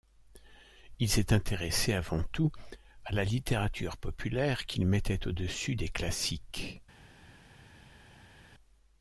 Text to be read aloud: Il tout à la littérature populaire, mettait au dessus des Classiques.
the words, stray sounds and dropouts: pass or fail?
fail